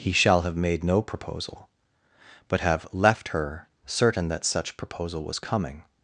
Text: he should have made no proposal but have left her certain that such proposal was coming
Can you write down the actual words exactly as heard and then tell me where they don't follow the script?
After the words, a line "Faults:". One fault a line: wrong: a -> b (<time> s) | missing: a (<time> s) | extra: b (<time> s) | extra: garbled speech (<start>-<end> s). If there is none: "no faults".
he shall have made no proposal but have left her certain that such proposal was coming
Faults:
wrong: should -> shall (0.1 s)